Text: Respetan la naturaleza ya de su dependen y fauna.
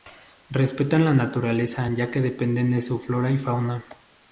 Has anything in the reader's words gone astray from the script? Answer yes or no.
yes